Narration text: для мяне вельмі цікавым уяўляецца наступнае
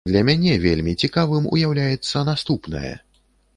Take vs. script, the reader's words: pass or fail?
pass